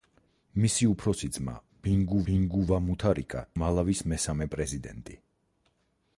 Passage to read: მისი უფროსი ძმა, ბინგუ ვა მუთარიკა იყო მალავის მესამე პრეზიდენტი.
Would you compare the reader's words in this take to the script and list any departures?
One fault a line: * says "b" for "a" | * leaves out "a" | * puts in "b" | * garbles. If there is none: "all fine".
* puts in "ბინგუ"
* leaves out "იყო"